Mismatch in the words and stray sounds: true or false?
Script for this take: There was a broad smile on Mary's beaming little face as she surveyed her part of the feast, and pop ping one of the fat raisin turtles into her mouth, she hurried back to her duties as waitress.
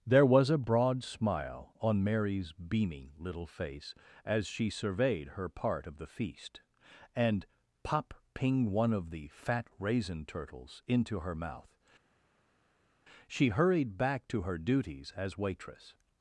false